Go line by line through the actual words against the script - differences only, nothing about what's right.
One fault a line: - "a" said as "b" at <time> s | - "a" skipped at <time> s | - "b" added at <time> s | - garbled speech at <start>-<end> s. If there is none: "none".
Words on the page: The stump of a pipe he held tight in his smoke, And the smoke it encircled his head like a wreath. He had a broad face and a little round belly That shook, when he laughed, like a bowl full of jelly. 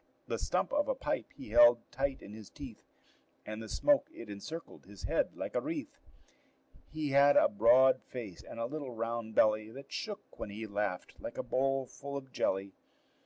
- "smoke" said as "teeth" at 2.5 s